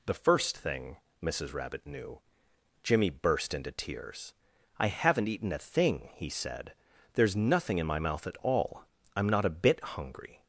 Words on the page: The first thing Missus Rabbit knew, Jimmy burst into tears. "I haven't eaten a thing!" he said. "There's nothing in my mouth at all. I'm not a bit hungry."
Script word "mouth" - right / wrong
right